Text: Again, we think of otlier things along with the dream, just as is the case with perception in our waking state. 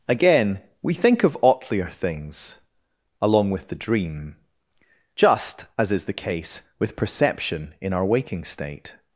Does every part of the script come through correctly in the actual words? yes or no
yes